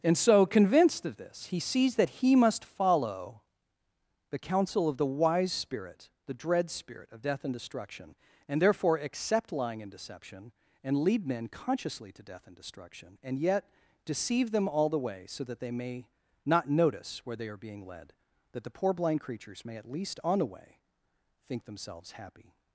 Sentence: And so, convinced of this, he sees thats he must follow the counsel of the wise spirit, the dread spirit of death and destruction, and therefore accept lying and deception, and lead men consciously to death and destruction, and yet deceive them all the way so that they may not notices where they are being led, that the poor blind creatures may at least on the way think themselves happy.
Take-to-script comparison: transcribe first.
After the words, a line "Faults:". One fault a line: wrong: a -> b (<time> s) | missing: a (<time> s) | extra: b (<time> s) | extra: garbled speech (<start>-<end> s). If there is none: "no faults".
And so, convinced of this, he sees that he must follow the counsel of the wise spirit, the dread spirit of death and destruction, and therefore accept lying and deception, and lead men consciously to death and destruction, and yet deceive them all the way so that they may not notice where they are being led, that the poor blind creatures may at least on the way think themselves happy.
Faults:
wrong: thats -> that (1.9 s)
wrong: notices -> notice (16.7 s)